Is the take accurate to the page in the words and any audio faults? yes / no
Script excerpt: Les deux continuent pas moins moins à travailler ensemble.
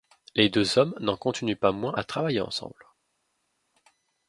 no